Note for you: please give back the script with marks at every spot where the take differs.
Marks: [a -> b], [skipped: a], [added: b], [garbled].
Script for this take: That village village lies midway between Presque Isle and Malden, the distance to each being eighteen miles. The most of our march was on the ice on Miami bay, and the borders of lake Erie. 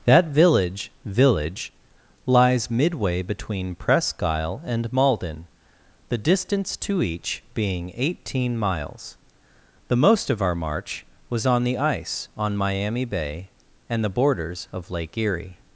That village village lies midway between Presque Isle and Malden, the distance to each being eighteen miles. The most of our march was on the ice on Miami bay, and the borders of lake Erie.